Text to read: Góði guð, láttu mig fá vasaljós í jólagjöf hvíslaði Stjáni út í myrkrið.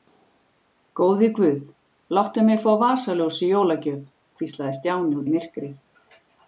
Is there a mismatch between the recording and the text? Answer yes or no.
yes